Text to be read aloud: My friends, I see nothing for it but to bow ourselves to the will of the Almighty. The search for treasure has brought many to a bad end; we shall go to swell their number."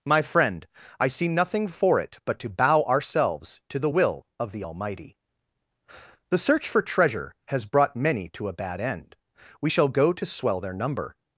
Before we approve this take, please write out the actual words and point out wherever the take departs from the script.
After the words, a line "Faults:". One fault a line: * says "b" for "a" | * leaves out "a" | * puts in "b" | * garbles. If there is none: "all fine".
My friend, I see nothing for it but to bow ourselves to the will of the Almighty. The search for treasure has brought many to a bad end; we shall go to swell their number."
Faults:
* says "friend" for "friends"